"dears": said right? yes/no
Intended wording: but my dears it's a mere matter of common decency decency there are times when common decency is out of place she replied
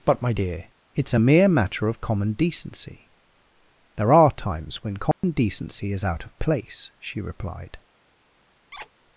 no